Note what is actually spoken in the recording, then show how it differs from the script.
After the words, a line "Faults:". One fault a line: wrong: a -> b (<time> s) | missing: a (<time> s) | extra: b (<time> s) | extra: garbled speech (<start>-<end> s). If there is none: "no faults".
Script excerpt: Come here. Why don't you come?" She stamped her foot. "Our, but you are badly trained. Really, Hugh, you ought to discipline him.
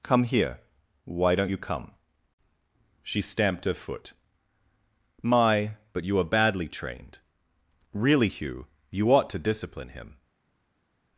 Come here. Why don't you come?" She stamped her foot. "My, but you are badly trained. Really, Hugh, you ought to discipline him.
Faults:
wrong: Our -> My (5.2 s)